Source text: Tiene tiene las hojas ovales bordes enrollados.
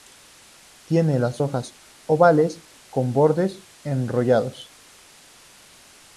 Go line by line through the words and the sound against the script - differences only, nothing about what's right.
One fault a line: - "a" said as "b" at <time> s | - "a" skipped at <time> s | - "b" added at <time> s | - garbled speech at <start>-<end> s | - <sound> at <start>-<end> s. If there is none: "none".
- "tiene" skipped at 1.2 s
- "con" added at 2.9 s